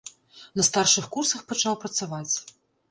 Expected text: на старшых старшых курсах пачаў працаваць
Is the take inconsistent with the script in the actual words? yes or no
yes